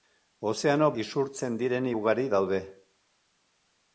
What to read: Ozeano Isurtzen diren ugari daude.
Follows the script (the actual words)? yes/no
yes